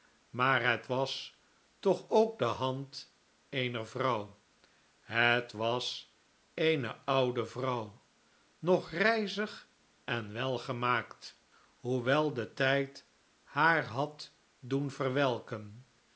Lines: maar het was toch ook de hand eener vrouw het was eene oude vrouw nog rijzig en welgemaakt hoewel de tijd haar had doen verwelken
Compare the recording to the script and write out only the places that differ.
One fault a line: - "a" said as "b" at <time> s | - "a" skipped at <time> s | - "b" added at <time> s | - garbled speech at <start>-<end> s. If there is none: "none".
none